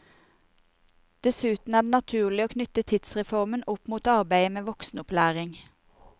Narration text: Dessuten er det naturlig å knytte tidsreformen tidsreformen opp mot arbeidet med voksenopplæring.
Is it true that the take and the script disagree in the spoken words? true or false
true